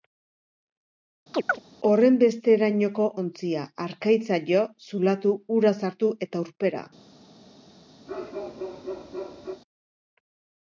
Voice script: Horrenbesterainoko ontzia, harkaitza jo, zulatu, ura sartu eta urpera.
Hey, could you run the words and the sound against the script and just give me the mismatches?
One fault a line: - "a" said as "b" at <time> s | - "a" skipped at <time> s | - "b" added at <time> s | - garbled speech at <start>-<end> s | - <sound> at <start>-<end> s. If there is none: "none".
- chirp at 1.3-1.6 s
- bark at 8.1-9.6 s